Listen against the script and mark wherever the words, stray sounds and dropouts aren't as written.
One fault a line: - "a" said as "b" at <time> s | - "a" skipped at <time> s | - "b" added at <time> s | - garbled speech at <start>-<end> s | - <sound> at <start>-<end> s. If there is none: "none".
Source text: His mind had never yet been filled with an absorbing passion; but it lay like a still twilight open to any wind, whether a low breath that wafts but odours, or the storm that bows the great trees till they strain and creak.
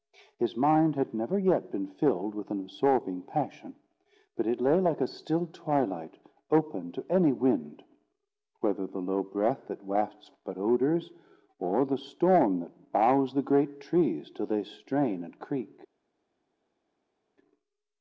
- "a" said as "the" at 8.9 s